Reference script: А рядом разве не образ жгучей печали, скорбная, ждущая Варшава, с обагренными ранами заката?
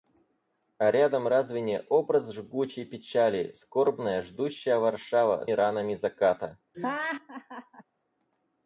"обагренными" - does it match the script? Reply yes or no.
no